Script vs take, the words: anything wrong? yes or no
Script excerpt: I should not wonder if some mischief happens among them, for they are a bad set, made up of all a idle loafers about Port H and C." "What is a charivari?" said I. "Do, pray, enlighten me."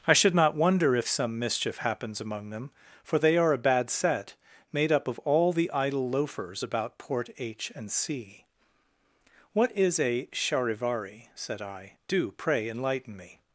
yes